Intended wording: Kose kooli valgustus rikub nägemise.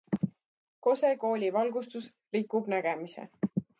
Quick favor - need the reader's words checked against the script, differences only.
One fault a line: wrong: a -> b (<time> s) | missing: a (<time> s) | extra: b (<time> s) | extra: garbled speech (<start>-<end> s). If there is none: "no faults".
no faults